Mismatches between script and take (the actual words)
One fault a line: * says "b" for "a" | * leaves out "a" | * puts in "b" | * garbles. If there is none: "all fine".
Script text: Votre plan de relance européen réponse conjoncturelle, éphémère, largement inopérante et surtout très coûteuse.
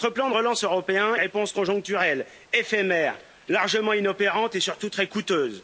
all fine